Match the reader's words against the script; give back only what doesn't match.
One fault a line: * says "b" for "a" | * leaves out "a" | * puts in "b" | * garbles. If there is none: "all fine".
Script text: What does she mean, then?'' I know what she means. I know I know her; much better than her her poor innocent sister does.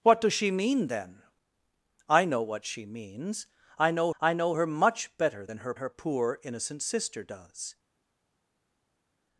all fine